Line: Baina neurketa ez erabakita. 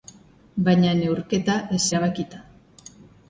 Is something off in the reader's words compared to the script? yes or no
no